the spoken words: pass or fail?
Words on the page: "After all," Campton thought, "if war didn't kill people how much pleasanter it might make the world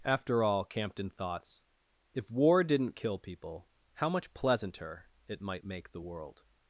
fail